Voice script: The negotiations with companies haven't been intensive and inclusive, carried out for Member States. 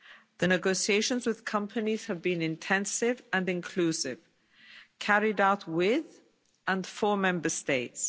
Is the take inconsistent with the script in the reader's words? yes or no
yes